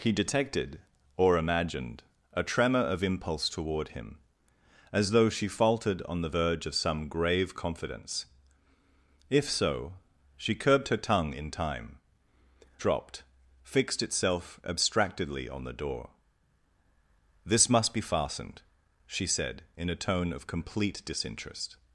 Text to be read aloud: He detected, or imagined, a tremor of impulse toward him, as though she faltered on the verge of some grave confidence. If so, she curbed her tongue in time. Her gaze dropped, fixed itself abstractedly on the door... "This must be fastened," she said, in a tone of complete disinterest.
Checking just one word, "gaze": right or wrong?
wrong